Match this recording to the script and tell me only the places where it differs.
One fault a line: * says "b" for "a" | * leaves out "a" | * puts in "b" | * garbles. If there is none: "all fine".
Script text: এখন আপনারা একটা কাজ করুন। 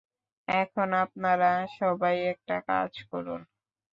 * puts in "সবাই"